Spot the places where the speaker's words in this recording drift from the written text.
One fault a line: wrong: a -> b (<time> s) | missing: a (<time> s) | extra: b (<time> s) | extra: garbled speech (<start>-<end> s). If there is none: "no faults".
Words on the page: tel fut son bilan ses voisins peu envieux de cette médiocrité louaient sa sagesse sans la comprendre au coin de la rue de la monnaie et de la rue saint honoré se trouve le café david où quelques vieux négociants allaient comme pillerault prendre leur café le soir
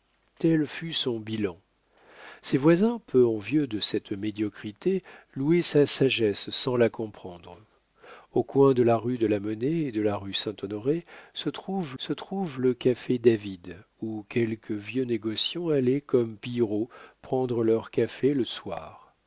extra: se trouve (12.0 s)